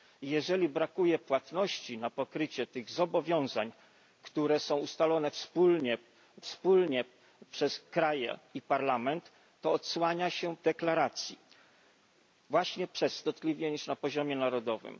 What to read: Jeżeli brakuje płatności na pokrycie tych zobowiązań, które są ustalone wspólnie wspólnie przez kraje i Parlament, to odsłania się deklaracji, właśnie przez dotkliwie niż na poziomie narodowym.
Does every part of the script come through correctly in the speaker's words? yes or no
yes